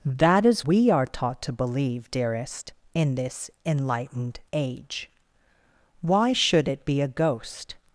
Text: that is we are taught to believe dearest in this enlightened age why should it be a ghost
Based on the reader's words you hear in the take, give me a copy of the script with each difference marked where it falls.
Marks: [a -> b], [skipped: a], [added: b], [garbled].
that is we are taught to believe dearest in this enlightened age why should it be a ghost